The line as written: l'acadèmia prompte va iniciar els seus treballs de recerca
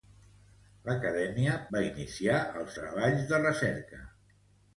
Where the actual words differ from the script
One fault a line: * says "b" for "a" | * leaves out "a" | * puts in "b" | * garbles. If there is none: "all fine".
* leaves out "prompte"
* leaves out "seus"